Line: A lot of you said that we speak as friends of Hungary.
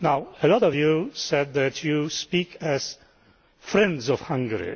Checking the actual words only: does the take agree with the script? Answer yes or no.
no